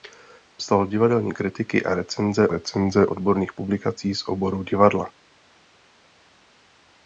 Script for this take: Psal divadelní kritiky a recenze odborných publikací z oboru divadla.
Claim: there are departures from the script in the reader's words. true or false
true